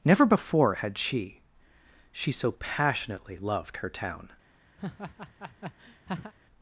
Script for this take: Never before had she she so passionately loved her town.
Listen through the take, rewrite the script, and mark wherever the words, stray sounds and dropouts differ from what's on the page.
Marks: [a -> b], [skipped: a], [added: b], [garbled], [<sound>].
Never before had she she so passionately loved her town. [laugh]